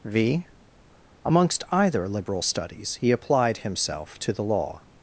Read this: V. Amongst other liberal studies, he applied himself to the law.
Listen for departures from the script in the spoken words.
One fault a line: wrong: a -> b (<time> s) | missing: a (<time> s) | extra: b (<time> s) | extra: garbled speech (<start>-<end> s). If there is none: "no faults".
wrong: other -> either (1.7 s)